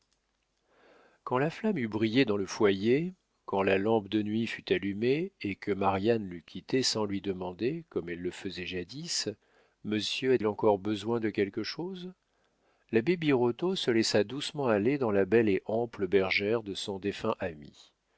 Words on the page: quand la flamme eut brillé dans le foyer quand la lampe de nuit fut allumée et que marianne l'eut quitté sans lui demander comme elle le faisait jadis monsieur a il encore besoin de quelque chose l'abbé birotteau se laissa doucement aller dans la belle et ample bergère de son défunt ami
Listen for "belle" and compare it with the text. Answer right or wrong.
right